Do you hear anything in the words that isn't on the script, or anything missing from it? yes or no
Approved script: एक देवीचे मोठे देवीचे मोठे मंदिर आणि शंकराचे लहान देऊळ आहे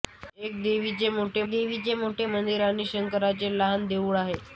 no